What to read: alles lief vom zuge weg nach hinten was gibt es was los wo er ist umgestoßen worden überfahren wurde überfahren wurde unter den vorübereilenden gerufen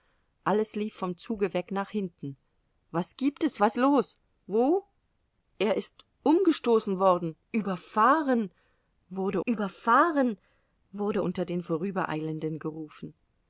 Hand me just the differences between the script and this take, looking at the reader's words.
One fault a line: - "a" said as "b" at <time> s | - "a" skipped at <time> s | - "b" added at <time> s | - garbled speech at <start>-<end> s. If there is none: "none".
none